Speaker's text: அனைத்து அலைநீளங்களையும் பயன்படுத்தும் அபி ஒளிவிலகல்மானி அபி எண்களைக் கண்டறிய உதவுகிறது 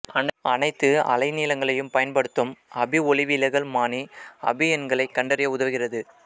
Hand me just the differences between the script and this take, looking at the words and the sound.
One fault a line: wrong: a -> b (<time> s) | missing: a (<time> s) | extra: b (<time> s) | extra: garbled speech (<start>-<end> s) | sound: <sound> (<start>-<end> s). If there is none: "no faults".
no faults